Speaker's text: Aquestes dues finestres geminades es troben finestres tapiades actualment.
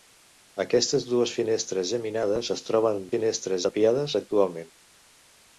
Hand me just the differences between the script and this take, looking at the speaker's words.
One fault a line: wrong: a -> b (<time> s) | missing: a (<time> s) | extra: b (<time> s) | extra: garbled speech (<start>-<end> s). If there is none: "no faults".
no faults